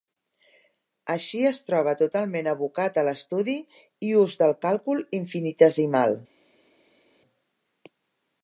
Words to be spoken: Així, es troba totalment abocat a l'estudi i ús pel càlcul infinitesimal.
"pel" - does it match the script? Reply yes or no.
no